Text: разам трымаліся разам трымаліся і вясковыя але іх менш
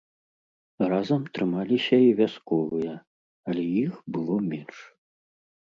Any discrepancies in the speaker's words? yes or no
yes